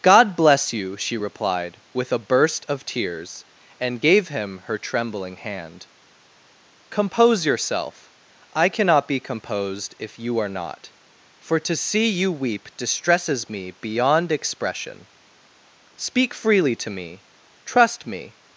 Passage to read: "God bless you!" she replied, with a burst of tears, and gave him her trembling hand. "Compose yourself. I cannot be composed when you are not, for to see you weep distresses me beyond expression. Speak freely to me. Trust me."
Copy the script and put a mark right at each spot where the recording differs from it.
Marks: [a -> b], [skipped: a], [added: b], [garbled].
"God bless you!" she replied, with a burst of tears, and gave him her trembling hand. "Compose yourself. I cannot be composed [when -> if] you are not, for to see you weep distresses me beyond expression. Speak freely to me. Trust me."